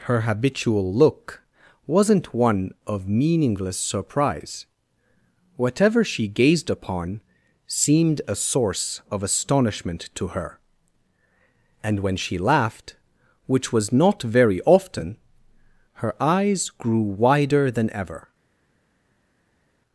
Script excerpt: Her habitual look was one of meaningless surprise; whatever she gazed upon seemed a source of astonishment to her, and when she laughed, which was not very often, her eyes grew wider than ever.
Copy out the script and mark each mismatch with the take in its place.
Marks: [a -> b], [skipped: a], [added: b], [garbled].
Her habitual look [was -> wasn't] one of meaningless surprise; whatever she gazed upon seemed a source of astonishment to her, and when she laughed, which was not very often, her eyes grew wider than ever.